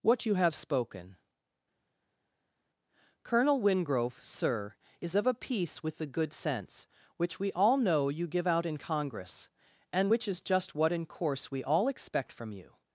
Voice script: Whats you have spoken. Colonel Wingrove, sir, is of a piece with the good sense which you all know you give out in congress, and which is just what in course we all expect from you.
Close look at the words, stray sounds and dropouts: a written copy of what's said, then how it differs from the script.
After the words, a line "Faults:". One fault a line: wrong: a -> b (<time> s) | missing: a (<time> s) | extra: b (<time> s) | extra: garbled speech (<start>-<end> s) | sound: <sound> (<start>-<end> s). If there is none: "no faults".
What you have spoken. Colonel Wingrove, sir, is of a piece with the good sense which we all know you give out in congress, and which is just what in course we all expect from you.
Faults:
wrong: Whats -> What (0.0 s)
wrong: you -> we (7.4 s)